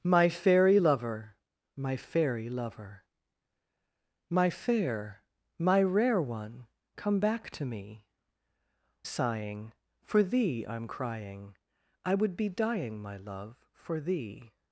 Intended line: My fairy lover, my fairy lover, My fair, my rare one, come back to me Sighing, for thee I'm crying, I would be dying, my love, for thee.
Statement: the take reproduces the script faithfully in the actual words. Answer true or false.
true